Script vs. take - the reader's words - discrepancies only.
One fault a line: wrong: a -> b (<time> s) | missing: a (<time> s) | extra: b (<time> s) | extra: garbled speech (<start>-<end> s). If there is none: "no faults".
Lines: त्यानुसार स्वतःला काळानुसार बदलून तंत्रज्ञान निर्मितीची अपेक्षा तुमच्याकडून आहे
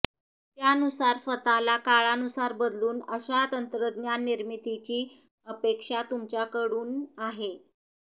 extra: अशा (3.1 s)